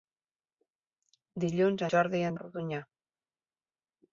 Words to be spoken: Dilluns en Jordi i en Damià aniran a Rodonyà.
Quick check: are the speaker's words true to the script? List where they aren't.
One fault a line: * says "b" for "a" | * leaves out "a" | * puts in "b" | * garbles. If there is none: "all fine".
* leaves out "en"
* leaves out "Damià aniran"